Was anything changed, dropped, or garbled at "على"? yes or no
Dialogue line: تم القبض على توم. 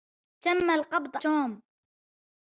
yes